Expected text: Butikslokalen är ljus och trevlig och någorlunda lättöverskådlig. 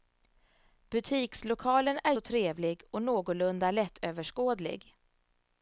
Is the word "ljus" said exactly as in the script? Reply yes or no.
no